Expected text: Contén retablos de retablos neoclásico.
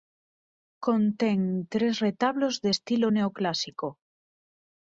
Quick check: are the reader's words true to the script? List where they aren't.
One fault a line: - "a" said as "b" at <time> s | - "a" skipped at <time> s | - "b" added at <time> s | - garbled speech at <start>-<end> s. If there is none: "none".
- "tres" added at 1.7 s
- "retablos" said as "estilo" at 2.7 s